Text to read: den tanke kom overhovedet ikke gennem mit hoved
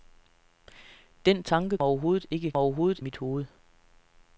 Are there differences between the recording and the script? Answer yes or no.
yes